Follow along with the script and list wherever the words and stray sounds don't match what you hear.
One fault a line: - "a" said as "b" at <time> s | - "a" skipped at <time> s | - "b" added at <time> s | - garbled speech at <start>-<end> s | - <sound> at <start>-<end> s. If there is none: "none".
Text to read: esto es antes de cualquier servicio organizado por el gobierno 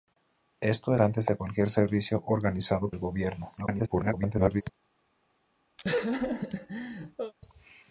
- "es" skipped at 0.9 s
- "por" skipped at 2.9 s
- garbled speech at 3.6-4.6 s
- laugh at 5.8-7.3 s